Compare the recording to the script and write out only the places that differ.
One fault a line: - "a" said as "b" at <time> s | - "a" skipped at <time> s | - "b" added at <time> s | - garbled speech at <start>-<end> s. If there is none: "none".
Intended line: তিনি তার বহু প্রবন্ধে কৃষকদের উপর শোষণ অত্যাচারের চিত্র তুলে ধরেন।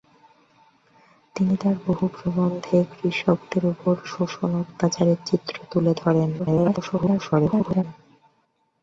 - garbled speech at 6.4-7.8 s